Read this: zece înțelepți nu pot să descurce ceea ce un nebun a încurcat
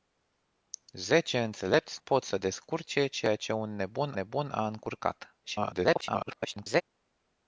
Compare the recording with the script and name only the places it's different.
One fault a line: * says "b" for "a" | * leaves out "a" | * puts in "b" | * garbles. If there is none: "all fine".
* leaves out "nu"
* puts in "nebun"
* garbles